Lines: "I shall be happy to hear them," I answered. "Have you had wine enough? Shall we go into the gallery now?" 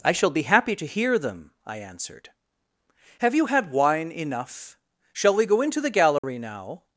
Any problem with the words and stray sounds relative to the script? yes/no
yes